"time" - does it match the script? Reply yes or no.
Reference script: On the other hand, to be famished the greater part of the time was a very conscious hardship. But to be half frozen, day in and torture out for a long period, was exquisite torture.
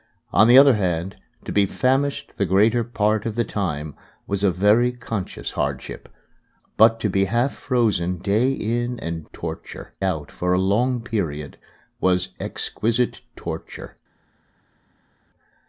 yes